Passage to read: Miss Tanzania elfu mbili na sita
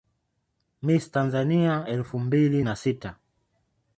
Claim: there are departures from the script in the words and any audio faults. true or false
false